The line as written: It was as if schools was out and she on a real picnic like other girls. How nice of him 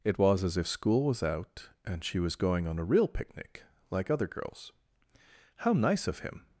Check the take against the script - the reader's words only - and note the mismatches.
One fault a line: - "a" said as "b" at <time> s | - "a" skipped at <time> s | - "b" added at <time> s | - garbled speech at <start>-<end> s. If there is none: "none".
- "schools" said as "school" at 0.7 s
- "was going" added at 2.2 s